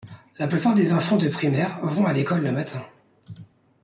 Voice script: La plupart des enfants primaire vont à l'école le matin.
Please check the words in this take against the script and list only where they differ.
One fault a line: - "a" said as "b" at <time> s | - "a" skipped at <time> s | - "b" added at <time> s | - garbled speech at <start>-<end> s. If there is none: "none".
- "de" added at 1.2 s